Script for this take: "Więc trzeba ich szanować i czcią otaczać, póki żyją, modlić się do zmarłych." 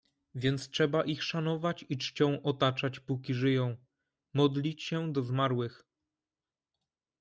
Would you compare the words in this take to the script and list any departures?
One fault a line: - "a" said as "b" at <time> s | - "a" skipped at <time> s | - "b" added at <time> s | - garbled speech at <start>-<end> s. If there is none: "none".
none